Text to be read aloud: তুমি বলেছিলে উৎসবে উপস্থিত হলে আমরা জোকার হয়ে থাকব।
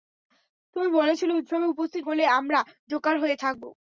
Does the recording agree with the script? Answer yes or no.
yes